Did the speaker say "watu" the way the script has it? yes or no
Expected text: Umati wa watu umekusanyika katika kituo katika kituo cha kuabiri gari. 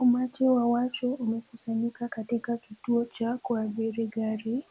yes